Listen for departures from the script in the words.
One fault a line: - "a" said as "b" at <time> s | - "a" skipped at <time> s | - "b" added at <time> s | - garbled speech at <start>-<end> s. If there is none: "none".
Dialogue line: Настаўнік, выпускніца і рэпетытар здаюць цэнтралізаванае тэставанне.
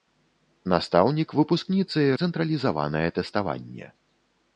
- "рэпетытар здаюць" skipped at 2.2 s